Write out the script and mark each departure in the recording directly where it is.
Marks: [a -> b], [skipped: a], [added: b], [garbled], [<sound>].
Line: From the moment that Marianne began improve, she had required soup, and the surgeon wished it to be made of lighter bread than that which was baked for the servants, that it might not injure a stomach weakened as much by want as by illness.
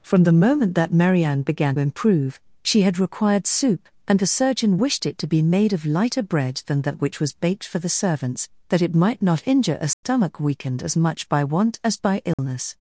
From the moment that Marianne began improve, she had required soup, and the surgeon wished it to be made of lighter bread than that which was baked for the servants, that it might not injure a stomach [dropout] weakened as much by want as by illness. [dropout]